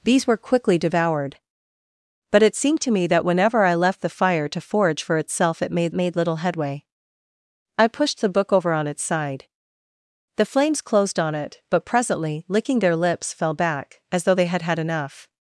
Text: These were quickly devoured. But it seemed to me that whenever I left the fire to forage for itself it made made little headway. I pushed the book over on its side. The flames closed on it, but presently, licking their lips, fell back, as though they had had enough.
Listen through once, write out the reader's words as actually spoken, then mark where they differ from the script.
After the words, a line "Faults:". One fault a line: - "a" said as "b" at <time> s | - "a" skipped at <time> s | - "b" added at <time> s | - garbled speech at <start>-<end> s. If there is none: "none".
These were quickly devoured. But it seemed to me that whenever I left the fire to forage for itself it made made little headway. I pushed the book over on its side. The flames closed on it, but presently, licking their lips, fell back, as though they had had enough.
Faults:
none